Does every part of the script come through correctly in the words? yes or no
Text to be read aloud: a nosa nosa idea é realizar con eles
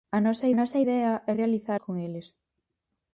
yes